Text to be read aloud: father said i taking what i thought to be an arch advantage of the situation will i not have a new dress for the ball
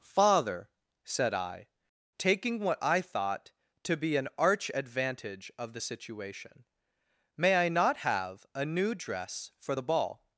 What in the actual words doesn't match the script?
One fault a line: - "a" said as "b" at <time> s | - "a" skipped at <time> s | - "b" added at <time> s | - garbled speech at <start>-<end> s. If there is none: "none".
- "will" said as "may" at 7.4 s